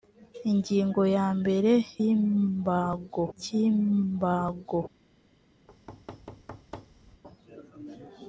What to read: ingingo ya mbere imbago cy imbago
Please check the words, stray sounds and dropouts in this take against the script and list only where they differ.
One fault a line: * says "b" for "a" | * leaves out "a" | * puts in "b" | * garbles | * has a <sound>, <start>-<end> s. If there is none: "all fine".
* has a thud, 5.7-7.2 s